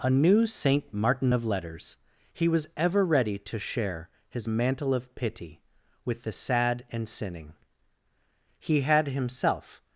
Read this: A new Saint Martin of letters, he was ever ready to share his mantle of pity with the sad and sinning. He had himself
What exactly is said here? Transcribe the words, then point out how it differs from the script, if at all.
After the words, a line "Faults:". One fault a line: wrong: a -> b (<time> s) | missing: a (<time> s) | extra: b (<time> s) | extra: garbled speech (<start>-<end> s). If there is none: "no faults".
A new Saint Martin of letters, he was ever ready to share his mantle of pity with the sad and sinning. He had himself
Faults:
no faults